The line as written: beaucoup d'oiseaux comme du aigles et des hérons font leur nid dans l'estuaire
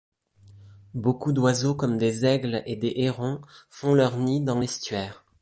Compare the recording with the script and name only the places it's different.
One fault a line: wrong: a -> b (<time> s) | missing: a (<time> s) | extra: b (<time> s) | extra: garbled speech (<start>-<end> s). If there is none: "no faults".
wrong: du -> des (2.0 s)